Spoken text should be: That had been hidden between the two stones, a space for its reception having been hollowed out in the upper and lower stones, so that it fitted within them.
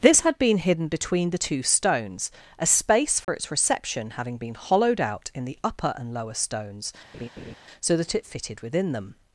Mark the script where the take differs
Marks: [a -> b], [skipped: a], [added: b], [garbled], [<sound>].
[That -> This] had been hidden between the two stones, a space for [dropout] its reception having been hollowed out in the upper and lower stones, [laugh] so that it fitted within them.